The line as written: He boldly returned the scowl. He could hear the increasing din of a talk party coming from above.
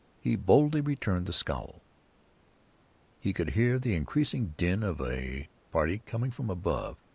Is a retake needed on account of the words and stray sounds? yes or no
yes